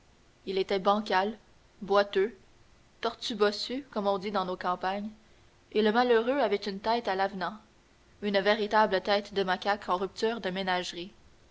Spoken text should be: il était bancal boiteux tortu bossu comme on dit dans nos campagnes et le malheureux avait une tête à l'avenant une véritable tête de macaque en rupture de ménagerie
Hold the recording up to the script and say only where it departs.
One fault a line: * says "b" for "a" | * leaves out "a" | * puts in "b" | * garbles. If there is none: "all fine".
all fine